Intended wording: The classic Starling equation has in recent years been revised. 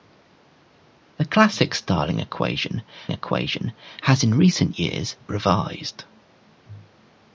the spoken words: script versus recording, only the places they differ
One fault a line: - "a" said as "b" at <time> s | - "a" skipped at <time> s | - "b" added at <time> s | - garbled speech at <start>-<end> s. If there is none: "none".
- "equation" added at 3.1 s
- "been" skipped at 5.2 s